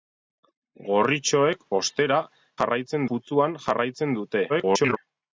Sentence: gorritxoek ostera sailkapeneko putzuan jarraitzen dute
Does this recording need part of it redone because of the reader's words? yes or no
yes